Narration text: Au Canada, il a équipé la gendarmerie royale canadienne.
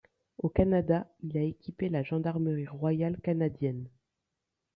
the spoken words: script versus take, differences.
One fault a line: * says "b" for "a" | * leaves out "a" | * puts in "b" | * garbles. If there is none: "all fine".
all fine